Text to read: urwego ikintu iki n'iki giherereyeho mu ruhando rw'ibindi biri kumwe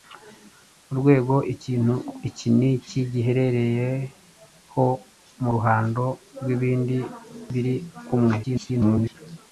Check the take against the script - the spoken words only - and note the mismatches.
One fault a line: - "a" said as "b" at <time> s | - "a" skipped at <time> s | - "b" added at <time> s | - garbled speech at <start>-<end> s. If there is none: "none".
- garbled speech at 8.4-9.2 s